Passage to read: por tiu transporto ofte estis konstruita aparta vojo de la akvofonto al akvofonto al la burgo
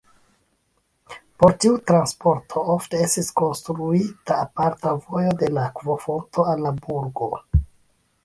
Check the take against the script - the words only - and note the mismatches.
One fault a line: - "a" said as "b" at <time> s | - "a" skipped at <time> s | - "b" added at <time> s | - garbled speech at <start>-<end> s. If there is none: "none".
- "akvofonto al" skipped at 6.7 s